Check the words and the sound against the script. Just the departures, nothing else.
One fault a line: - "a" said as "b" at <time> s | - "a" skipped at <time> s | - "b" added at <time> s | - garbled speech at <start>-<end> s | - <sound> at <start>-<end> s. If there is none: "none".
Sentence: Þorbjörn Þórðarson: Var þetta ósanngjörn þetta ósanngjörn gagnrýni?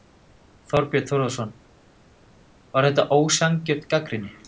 - "þetta ósanngjörn" skipped at 3.9 s